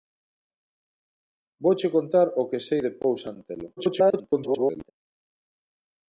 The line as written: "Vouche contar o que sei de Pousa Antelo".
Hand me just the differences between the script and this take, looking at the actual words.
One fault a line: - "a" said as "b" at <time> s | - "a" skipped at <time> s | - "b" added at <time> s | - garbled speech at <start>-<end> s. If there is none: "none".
- garbled speech at 3.8-4.9 s